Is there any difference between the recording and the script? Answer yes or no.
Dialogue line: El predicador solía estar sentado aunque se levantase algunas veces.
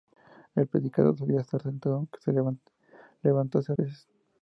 yes